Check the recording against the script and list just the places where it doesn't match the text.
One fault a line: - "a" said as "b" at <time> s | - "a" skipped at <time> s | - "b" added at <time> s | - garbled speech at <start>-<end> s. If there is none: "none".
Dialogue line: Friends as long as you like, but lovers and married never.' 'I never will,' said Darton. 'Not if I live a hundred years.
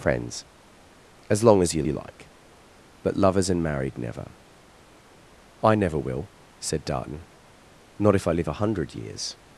- "you" added at 1.8 s